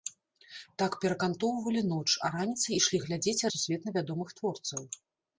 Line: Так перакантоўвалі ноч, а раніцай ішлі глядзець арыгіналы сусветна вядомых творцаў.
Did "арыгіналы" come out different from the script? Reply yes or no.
yes